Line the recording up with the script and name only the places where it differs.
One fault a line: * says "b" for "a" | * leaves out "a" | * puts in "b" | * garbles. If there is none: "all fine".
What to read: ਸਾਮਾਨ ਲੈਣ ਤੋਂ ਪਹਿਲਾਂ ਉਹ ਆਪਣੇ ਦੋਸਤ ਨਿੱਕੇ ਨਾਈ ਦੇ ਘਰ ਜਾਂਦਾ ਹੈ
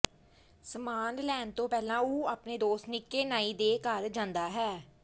all fine